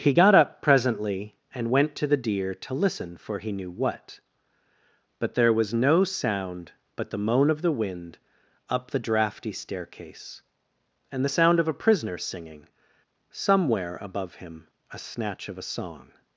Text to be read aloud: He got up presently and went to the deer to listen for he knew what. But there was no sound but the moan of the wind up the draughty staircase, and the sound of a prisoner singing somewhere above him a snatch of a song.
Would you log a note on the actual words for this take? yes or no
no